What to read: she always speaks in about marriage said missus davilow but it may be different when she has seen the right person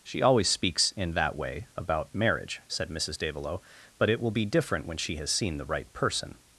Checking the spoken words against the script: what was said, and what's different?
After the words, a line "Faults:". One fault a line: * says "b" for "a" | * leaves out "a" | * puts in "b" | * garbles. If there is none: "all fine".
she always speaks in that way about marriage said missus davilow but it will be different when she has seen the right person
Faults:
* puts in "that way"
* says "will" for "may"